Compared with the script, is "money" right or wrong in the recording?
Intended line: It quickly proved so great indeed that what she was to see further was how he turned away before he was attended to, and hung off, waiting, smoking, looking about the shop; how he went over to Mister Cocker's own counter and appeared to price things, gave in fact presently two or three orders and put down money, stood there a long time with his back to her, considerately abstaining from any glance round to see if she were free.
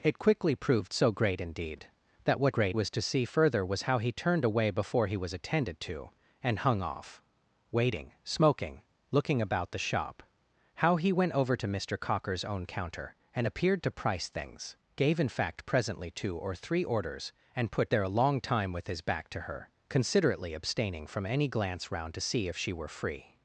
wrong